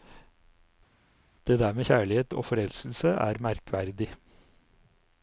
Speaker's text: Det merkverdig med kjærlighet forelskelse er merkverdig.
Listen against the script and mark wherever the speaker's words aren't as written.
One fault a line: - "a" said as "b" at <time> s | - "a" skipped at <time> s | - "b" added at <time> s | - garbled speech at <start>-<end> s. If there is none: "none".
- "merkverdig" said as "der" at 1.6 s
- "og" added at 2.3 s